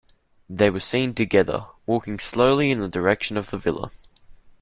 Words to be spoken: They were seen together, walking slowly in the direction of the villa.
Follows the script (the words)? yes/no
yes